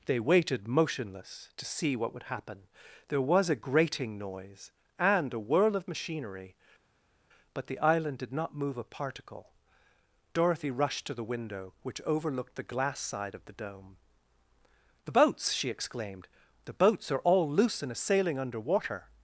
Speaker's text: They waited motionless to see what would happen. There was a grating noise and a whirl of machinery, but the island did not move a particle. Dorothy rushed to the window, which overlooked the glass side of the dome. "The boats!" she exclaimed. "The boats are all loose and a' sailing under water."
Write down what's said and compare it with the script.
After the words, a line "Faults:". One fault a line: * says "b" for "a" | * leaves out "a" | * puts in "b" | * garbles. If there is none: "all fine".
They waited motionless to see what would happen. There was a grating noise and a whirl of machinery, but the island did not move a particle. Dorothy rushed to the window, which overlooked the glass side of the dome. "The boats!" she exclaimed. "The boats are all loose and a' sailing under water."
Faults:
all fine